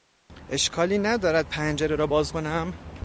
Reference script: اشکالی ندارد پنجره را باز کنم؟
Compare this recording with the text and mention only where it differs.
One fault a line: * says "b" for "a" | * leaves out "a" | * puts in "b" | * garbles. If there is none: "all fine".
all fine